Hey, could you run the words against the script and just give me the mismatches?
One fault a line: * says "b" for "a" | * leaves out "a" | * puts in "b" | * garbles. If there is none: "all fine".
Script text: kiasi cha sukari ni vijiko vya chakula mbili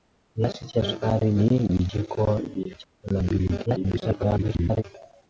* garbles